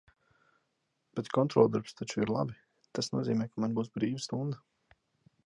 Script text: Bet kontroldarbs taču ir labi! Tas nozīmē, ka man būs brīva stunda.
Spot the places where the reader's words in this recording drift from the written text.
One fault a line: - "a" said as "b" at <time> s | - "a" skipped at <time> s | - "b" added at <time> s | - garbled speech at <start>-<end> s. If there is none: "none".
none